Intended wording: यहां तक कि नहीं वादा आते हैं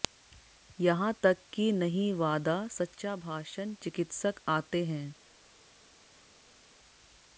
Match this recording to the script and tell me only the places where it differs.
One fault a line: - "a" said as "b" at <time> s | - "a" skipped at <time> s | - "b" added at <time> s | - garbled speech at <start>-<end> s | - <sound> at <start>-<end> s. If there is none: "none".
- "सच्चा भाषण चिकित्सक" added at 2.7 s